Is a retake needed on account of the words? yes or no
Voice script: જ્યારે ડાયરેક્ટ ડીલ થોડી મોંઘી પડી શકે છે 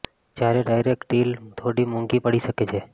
no